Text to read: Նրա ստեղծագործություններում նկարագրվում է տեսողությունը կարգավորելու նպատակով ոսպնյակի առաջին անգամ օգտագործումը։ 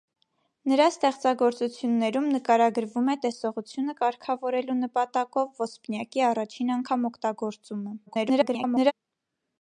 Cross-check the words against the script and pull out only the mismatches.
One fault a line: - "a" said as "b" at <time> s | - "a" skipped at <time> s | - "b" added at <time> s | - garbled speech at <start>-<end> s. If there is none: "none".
- garbled speech at 8.1-8.9 s